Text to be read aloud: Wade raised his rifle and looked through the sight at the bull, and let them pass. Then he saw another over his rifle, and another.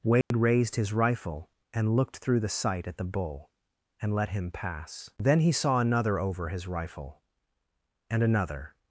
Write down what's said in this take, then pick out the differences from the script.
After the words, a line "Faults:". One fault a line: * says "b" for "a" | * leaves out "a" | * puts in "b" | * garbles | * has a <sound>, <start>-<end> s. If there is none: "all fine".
Wade raised his rifle and looked through the sight at the bull, and let him pass. Then he saw another over his rifle, and another.
Faults:
* has a dropout, 0.2-0.3 s
* says "him" for "them"